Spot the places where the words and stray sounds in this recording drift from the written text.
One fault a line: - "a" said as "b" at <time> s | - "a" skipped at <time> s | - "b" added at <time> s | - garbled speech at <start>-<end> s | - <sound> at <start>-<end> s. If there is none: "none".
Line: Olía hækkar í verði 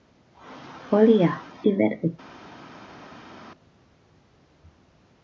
- "hækkar" skipped at 1.3 s